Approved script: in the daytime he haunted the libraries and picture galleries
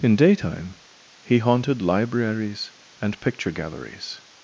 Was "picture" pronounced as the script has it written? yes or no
yes